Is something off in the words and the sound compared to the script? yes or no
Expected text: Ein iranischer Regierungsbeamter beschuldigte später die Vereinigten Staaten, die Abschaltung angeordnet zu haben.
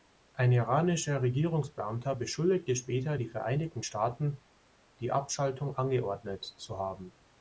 no